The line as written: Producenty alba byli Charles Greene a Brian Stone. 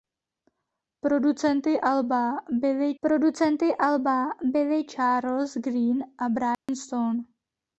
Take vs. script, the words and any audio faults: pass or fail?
fail